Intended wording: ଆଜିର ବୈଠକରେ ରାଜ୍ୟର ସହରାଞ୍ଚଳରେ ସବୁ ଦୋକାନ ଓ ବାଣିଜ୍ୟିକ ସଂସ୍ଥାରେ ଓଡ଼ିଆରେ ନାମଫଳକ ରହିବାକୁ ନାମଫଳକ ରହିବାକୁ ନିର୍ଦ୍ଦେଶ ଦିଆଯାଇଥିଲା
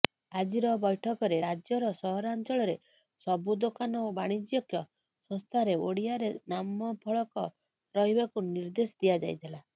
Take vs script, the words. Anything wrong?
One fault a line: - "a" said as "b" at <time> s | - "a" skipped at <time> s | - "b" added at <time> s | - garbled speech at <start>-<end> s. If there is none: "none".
- "ନାମଫଳକ ରହିବାକୁ" skipped at 8.5 s